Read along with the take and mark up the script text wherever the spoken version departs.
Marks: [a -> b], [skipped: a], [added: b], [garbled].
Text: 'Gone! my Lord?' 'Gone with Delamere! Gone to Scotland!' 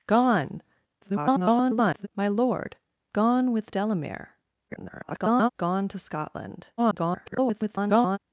'Gone! [garbled] my Lord?' 'Gone with Delamere! [garbled] Gone to Scotland!' [garbled]